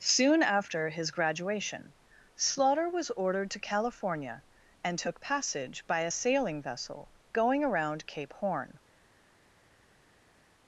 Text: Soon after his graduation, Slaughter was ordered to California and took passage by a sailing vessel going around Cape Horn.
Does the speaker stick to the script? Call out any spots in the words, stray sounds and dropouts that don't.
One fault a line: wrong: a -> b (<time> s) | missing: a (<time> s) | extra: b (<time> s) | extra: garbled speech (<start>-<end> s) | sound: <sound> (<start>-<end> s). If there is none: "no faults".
no faults